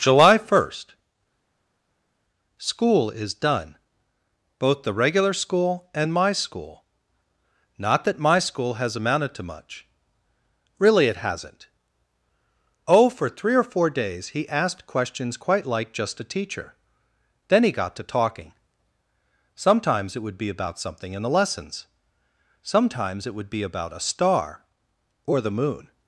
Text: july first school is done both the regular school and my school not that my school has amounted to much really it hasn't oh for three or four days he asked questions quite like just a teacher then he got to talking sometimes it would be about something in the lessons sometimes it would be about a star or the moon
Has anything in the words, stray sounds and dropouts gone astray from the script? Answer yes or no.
no